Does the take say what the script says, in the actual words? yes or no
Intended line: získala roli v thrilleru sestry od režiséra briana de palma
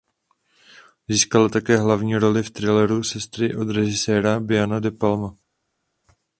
no